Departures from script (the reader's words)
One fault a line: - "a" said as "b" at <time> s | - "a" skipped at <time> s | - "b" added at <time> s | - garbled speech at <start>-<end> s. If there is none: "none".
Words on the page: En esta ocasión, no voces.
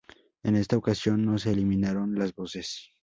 - "se eliminaron las" added at 1.4 s